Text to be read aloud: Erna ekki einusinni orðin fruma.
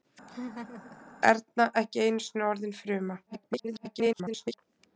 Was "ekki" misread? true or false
false